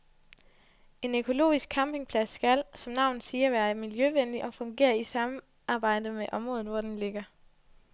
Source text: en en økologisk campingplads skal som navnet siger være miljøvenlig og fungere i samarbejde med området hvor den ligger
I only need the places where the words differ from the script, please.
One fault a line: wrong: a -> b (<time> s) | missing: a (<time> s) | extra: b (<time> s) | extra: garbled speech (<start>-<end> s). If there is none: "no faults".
missing: en (1.1 s)